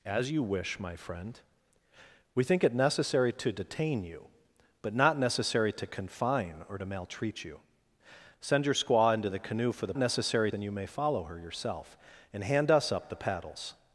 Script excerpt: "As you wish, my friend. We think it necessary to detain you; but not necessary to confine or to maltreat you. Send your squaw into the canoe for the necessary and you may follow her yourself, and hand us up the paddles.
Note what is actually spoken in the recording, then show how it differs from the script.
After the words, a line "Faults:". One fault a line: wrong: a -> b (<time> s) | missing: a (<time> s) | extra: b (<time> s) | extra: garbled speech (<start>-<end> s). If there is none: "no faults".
"As you wish, my friend. We think it necessary to detain you; but not necessary to confine or to maltreat you. Send your squaw into the canoe for the necessary and you may follow her yourself, and hand us up the paddles.
Faults:
no faults